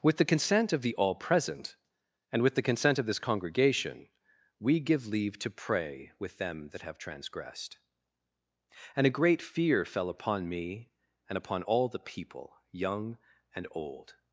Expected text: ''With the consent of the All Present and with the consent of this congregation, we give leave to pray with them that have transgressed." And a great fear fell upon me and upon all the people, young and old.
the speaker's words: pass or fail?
pass